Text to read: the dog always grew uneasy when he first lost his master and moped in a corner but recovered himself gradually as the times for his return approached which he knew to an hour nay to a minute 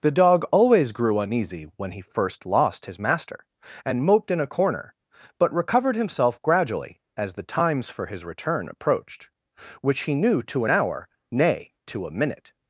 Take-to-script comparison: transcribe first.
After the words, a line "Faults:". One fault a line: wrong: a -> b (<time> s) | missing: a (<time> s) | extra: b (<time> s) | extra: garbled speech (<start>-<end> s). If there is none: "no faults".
the dog always grew uneasy when he first lost his master and moped in a corner but recovered himself gradually as the times for his return approached which he knew to an hour nay to a minute
Faults:
no faults